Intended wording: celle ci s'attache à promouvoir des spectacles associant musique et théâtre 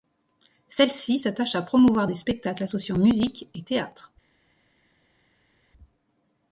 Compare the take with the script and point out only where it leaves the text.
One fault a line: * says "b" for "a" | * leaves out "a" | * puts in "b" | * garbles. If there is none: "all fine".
all fine